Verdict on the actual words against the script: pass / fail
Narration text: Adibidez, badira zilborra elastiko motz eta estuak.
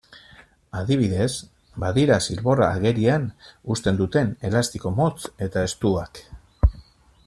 fail